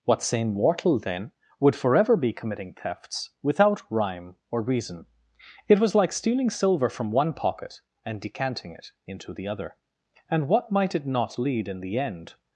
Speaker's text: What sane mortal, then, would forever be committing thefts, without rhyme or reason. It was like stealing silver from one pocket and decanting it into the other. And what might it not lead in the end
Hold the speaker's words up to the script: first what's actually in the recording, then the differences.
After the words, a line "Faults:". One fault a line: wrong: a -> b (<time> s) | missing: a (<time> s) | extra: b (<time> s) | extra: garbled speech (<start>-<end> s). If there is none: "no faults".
What sane mortal, then, would forever be committing thefts, without rhyme or reason. It was like stealing silver from one pocket and decanting it into the other. And what might it not lead in the end
Faults:
no faults